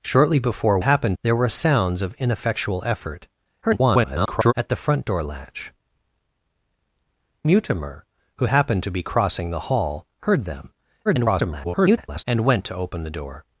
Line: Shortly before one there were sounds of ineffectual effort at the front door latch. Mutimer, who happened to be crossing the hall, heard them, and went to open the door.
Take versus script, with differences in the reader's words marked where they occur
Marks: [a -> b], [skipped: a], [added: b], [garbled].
Shortly before [one -> happened] there were sounds of ineffectual effort [garbled] at the front door latch. Mutimer, who happened to be crossing the hall, heard them, [garbled] and went to open the door.